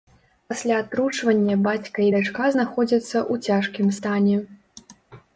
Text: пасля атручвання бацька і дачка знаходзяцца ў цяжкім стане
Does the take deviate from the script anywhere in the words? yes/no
no